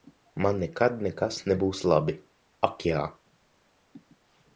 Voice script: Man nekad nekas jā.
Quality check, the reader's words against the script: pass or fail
fail